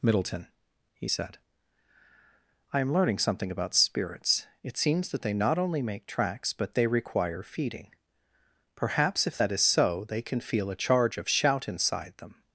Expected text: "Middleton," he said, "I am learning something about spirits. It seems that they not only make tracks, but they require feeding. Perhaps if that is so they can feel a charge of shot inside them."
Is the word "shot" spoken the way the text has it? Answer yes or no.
no